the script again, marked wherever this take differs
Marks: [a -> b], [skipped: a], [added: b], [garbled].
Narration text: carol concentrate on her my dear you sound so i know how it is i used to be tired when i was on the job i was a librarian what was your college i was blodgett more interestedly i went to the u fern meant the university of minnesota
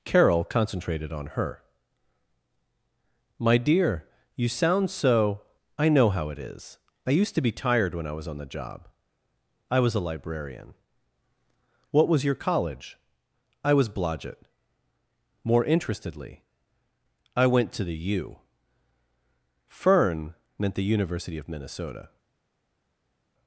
carol [concentrate -> concentrated] on her my dear you sound so i know how it is i used to be tired when i was on the job i was a librarian what was your college i was blodgett more interestedly i went to the u fern meant the university of minnesota